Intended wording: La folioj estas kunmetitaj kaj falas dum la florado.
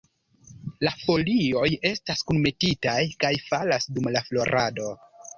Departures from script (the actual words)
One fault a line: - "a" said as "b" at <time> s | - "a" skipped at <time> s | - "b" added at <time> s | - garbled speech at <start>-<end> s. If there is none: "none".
none